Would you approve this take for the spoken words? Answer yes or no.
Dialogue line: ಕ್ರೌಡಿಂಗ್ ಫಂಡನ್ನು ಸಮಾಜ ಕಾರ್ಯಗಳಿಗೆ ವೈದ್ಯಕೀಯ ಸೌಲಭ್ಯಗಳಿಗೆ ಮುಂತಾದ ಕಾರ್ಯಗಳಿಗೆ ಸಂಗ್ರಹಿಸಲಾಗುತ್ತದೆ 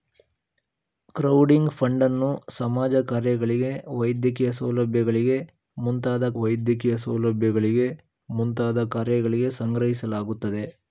no